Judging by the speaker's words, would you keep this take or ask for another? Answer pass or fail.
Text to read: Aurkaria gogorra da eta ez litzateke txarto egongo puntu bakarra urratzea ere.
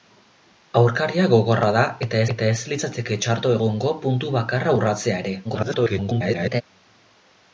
fail